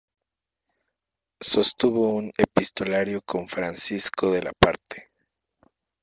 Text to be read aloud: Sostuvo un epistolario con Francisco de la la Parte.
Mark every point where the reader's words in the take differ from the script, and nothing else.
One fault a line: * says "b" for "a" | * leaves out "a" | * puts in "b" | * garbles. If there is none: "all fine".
* leaves out "la"